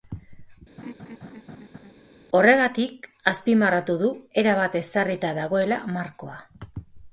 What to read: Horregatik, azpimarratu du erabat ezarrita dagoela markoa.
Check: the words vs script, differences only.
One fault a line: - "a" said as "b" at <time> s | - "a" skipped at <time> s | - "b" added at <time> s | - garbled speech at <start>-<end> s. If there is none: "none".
none